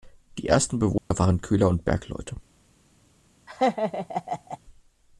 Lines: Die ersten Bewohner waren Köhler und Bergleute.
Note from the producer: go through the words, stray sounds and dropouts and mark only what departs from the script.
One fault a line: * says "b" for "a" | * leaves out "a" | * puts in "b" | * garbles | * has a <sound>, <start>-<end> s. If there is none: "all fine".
* has a dropout, 1.0-1.1 s
* has a laugh, 3.5-4.6 s